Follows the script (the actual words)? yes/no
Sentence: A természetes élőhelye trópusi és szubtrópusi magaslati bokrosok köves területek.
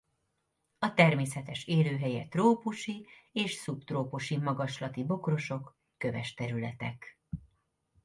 yes